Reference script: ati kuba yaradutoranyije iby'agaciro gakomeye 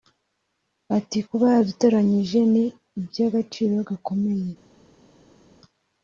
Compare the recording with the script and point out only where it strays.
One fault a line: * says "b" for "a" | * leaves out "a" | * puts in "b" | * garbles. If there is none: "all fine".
* puts in "ni"